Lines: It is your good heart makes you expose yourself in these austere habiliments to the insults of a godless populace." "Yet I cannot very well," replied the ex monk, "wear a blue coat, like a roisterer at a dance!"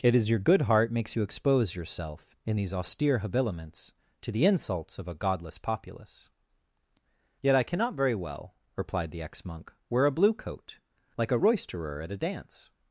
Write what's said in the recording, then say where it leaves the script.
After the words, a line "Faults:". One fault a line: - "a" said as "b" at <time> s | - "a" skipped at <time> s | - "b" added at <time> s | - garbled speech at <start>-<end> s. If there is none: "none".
It is your good heart makes you expose yourself in these austere habiliments to the insults of a godless populace." "Yet I cannot very well," replied the ex monk, "wear a blue coat, like a roisterer at a dance!"
Faults:
none